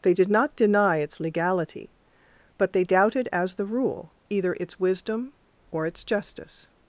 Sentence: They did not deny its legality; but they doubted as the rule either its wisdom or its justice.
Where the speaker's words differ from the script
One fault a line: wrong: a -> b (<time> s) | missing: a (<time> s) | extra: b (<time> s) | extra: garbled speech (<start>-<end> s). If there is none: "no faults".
no faults